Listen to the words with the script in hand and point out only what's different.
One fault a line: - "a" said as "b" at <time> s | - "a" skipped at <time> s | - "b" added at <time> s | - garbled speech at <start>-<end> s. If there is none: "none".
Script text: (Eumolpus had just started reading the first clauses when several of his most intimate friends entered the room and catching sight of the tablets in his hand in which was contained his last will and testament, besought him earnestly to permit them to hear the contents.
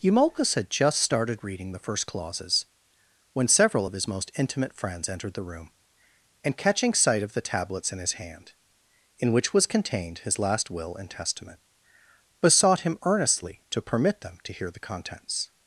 none